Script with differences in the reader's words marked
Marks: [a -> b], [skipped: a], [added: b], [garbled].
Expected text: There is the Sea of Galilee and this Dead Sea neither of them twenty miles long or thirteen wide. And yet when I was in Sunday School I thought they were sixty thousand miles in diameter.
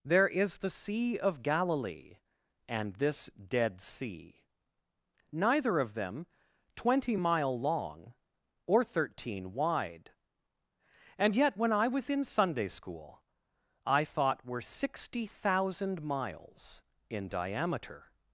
There is the Sea of Galilee and this Dead Sea neither of them twenty [miles -> mile] long or thirteen wide. And yet when I was in Sunday School I thought [skipped: they] were sixty thousand miles in diameter.